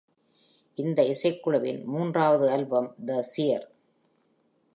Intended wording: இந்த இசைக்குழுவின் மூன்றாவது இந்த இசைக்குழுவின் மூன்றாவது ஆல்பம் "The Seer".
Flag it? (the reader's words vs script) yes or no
yes